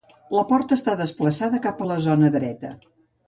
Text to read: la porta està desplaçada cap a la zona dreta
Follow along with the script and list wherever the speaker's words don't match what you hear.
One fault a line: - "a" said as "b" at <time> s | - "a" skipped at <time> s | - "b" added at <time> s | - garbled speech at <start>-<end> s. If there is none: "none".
none